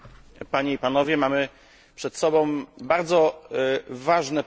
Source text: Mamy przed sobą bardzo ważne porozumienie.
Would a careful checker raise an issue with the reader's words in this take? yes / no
no